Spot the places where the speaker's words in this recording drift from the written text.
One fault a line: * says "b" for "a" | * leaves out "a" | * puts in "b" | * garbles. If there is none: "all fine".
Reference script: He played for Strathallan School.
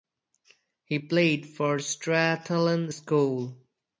all fine